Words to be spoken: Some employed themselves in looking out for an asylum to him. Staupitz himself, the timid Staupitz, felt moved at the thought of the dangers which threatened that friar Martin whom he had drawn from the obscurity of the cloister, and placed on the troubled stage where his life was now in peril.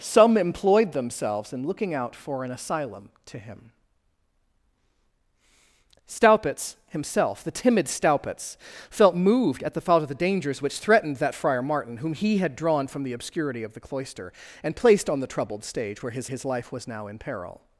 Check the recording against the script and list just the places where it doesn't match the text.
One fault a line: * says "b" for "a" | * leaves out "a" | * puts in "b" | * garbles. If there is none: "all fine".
* puts in "his"